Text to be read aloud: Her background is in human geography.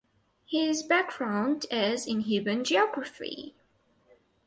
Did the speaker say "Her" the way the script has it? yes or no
no